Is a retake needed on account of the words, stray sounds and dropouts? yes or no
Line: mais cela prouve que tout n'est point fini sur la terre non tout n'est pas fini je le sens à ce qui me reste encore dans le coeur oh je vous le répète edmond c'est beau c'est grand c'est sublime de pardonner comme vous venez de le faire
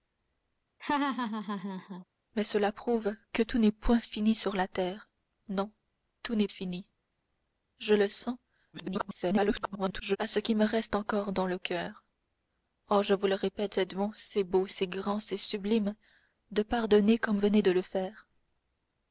yes